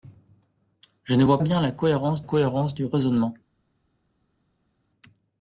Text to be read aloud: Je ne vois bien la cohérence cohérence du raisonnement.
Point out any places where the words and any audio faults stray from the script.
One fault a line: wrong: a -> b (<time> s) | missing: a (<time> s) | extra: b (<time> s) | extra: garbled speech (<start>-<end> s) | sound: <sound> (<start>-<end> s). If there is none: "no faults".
no faults